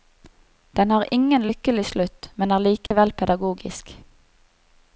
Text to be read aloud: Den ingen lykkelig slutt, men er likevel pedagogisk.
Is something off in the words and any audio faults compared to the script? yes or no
yes